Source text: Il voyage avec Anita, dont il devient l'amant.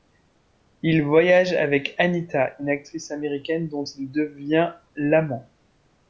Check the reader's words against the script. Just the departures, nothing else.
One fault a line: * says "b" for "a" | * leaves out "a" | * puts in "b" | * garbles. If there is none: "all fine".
* puts in "une actrice américaine"